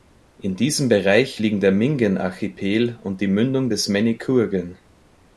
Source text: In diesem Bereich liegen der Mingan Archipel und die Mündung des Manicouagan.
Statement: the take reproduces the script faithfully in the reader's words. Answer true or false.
true